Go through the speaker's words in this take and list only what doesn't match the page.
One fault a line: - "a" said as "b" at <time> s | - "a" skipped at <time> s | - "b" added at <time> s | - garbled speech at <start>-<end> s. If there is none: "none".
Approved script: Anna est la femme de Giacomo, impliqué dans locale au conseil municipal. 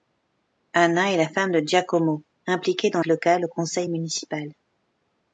none